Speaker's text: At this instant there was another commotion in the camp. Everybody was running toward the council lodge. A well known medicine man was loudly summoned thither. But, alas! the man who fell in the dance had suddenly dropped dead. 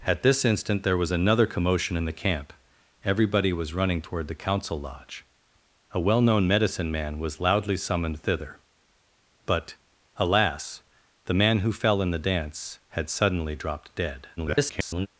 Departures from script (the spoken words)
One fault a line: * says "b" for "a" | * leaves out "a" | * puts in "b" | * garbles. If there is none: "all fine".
* garbles